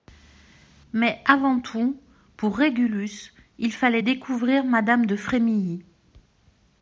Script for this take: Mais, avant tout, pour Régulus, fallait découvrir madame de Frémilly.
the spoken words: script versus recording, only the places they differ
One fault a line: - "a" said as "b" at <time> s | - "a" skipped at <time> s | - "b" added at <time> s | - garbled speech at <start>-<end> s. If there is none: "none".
- "il" added at 3.6 s